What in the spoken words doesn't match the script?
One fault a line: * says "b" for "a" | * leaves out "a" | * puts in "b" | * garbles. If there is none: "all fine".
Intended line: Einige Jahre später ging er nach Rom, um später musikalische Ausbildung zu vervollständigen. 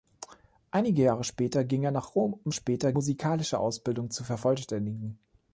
all fine